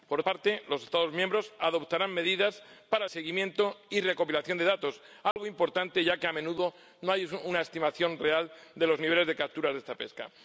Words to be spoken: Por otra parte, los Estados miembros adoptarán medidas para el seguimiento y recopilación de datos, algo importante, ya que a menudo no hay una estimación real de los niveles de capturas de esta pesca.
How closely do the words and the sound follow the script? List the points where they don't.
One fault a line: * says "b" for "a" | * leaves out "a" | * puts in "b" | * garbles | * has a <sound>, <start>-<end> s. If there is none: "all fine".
* leaves out "otra"
* leaves out "el"
* has a dropout, 5.3-5.4 s